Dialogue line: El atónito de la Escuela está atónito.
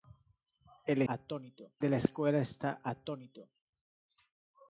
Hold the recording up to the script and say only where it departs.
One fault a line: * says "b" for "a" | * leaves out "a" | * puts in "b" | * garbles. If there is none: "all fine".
all fine